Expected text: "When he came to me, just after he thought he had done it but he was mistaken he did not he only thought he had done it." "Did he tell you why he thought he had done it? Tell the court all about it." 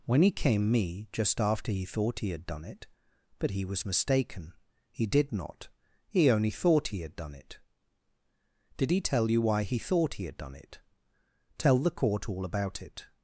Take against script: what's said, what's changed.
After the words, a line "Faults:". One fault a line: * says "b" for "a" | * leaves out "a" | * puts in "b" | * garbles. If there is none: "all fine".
"When he came me, just after he thought he had done it but he was mistaken he did not he only thought he had done it." "Did he tell you why he thought he had done it? Tell the court all about it."
Faults:
* leaves out "to"